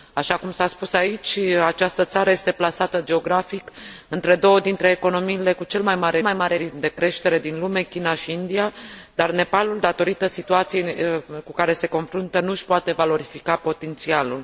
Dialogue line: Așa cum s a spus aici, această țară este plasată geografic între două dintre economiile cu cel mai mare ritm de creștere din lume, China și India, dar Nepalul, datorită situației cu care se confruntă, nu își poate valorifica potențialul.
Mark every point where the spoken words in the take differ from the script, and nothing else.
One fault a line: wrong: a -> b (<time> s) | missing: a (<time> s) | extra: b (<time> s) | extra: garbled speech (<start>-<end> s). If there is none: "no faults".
extra: mai mare (6.2 s)